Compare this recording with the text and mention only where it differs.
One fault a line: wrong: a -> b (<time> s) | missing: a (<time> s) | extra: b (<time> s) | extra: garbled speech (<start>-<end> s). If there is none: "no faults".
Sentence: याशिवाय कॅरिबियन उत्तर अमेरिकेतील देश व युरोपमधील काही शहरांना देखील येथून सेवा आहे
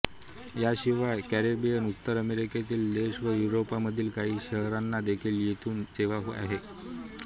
no faults